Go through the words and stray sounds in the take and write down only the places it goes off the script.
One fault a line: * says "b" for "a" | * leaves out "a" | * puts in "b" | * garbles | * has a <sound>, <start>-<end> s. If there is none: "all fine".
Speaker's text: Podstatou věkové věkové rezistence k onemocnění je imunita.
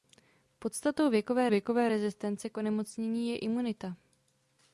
all fine